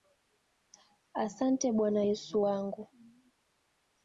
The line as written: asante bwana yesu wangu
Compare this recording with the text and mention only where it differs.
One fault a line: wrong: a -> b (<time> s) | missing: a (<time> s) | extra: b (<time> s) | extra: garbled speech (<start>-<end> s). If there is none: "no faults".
no faults